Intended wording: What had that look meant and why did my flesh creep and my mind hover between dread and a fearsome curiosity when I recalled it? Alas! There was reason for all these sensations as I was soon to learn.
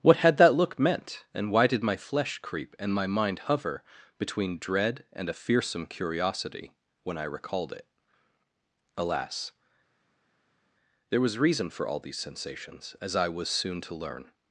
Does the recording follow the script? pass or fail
pass